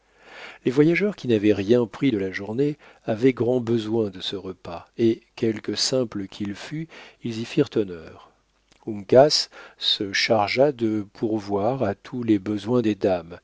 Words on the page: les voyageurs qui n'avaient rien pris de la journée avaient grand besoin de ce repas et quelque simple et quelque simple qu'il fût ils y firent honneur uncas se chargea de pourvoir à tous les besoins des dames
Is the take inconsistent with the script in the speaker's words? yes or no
yes